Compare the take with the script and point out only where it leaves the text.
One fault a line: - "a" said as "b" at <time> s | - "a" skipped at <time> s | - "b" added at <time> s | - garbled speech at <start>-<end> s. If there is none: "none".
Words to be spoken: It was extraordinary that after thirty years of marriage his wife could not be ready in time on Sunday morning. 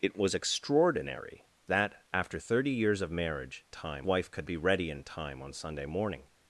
- "his" said as "time" at 3.7 s
- "not" skipped at 4.5 s